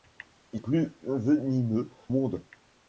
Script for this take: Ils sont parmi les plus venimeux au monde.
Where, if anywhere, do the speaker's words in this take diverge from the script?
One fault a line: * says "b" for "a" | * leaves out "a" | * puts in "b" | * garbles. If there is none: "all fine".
* leaves out "sont parmi les"
* leaves out "au"